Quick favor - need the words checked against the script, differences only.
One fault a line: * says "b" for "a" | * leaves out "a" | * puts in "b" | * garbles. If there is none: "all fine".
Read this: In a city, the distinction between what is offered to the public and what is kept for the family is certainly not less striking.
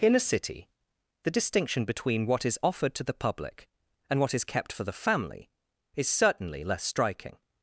* leaves out "not"